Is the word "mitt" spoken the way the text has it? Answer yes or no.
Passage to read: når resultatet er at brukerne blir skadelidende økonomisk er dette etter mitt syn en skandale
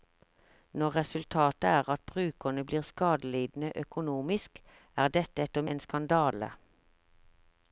no